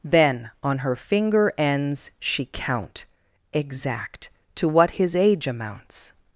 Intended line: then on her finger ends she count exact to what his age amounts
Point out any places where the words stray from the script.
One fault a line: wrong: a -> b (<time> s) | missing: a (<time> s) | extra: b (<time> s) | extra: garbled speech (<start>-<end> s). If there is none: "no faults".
no faults